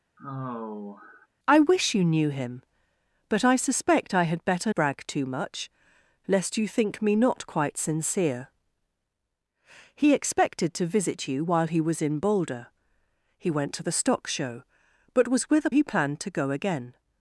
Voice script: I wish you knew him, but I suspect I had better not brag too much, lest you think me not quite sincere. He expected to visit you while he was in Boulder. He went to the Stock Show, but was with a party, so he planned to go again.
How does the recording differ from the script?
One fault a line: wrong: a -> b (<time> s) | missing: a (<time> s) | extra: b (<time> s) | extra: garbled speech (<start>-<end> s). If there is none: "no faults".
missing: not (4.7 s)
missing: party so (15.7 s)